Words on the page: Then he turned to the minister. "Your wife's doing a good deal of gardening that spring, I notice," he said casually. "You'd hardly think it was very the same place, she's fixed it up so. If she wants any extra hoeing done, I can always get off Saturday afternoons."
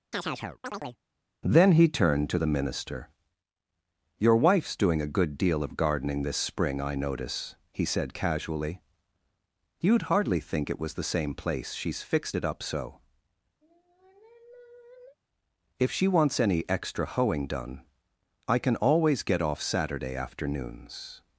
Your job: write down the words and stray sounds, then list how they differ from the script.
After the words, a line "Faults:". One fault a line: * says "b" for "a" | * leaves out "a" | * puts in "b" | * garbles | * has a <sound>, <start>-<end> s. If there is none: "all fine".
Then he turned to the minister. "Your wife's doing a good deal of gardening this spring, I notice," he said casually. "You'd hardly think it was the same place, she's fixed it up so. If she wants any extra hoeing done, I can always get off Saturday afternoons."
Faults:
* has a chirp, 0.1-1.0 s
* says "this" for "that"
* leaves out "very"
* has a sigh, 13.6-15.2 s